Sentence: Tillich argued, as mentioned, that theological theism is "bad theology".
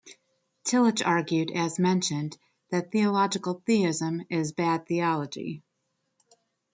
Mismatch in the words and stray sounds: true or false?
false